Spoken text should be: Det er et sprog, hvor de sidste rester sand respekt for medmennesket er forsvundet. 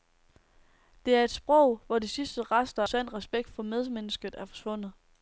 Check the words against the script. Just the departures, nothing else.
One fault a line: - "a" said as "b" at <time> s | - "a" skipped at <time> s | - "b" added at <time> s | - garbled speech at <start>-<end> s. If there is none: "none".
none